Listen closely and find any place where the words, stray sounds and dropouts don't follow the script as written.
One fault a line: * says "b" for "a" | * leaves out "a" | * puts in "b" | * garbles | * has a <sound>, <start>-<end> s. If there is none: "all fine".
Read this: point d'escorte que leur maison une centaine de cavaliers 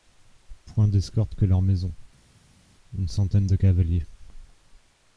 all fine